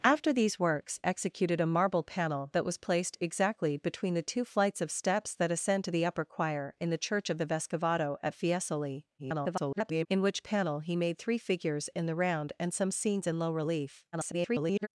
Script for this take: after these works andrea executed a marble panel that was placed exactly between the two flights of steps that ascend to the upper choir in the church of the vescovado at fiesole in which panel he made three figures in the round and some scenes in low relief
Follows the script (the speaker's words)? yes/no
no